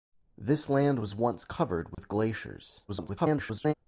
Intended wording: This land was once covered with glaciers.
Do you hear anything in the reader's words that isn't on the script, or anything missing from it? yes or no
yes